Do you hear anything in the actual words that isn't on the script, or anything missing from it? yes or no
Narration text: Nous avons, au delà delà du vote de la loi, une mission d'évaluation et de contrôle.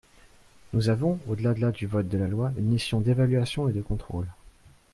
no